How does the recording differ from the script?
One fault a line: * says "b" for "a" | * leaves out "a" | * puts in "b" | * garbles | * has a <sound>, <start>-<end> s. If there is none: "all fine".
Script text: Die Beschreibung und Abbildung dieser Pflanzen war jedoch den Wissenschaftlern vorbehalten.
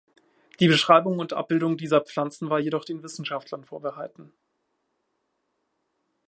all fine